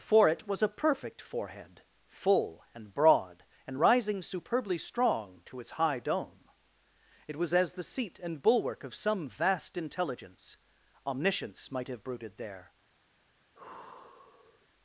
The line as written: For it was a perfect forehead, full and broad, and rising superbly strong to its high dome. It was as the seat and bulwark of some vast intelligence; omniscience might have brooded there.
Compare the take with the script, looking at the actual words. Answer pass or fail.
pass